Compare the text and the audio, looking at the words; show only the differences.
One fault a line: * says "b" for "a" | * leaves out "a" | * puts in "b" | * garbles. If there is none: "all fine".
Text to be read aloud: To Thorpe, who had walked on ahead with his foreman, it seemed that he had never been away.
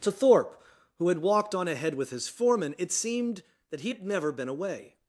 all fine